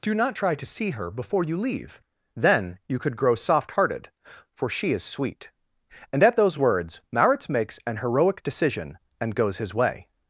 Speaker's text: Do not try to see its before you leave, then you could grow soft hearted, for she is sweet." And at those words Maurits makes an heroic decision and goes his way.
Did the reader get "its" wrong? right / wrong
wrong